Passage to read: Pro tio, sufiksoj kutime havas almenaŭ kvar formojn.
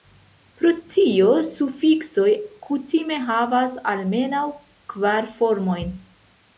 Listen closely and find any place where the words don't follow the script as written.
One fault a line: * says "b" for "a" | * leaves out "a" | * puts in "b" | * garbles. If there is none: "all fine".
all fine